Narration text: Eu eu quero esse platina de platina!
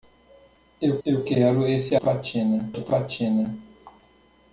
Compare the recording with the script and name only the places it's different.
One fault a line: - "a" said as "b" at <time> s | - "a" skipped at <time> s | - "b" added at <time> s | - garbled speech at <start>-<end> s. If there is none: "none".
none